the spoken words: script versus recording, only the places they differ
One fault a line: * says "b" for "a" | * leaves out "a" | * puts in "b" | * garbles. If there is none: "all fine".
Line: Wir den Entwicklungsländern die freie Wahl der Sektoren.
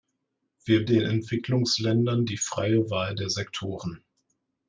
all fine